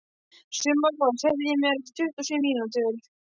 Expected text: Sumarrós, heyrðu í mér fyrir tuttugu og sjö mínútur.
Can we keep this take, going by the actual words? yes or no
no